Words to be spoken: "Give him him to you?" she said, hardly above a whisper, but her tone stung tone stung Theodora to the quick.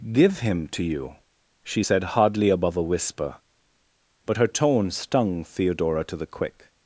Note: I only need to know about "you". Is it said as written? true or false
true